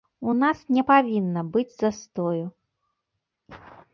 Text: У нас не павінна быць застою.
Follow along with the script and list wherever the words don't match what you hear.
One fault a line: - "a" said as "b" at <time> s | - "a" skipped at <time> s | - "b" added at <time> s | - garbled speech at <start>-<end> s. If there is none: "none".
none